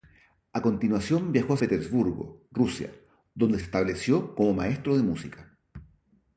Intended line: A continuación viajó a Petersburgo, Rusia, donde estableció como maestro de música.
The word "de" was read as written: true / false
true